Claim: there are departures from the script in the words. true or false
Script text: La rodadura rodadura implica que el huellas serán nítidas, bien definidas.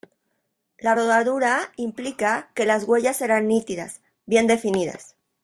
true